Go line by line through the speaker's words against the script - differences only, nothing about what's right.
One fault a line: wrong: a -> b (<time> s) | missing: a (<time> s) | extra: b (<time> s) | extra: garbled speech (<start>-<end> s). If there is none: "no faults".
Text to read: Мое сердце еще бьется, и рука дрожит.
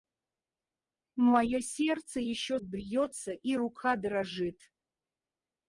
no faults